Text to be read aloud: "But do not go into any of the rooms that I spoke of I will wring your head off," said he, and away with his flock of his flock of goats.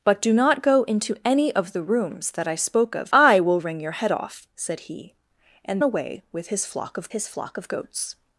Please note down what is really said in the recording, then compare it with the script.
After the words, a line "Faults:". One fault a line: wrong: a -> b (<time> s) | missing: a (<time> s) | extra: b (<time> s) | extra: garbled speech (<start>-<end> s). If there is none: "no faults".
"But do not go into any of the rooms that I spoke of I will wring your head off," said he, and away with his flock of his flock of goats.
Faults:
no faults